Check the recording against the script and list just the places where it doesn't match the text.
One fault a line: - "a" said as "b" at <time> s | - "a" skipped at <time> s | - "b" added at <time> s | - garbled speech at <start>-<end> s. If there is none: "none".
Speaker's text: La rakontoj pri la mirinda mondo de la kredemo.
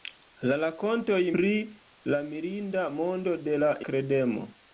none